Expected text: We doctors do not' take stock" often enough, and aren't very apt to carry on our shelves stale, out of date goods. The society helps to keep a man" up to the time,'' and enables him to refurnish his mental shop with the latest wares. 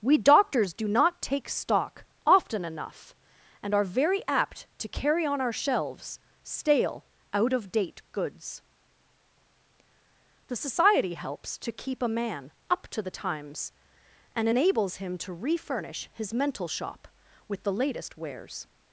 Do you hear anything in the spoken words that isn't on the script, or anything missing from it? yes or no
yes